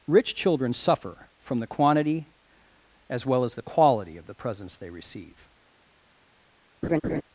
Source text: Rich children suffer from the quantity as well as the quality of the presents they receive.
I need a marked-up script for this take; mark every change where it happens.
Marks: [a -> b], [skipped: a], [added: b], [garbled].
Rich children suffer from the quantity as well as the quality of the presents they receive.